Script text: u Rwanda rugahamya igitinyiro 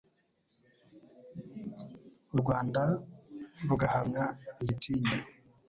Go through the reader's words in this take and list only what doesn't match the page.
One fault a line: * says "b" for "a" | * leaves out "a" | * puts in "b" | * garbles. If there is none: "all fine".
all fine